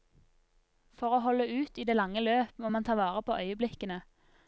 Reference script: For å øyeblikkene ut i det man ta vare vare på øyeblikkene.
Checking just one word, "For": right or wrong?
right